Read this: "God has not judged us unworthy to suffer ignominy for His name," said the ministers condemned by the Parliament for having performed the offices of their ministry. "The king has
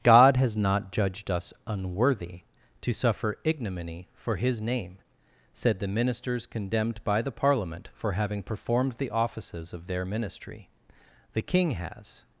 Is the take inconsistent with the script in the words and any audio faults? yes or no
no